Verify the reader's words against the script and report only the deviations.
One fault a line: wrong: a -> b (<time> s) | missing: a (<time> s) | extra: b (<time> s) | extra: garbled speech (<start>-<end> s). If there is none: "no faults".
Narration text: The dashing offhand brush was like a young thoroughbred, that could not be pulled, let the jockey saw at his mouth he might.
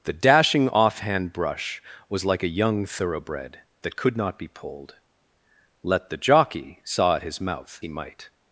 no faults